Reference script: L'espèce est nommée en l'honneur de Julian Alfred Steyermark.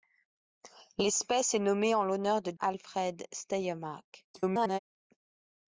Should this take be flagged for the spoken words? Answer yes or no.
yes